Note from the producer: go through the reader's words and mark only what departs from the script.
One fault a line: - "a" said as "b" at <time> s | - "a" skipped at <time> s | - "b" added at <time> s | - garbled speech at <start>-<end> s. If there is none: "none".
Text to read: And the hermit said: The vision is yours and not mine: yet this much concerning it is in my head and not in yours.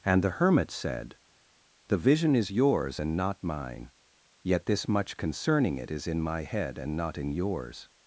none